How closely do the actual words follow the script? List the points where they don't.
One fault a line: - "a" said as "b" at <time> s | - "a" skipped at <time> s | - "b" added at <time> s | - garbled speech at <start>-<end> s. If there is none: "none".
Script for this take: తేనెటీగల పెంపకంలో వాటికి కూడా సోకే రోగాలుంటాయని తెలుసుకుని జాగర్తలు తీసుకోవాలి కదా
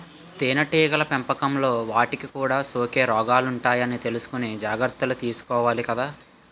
none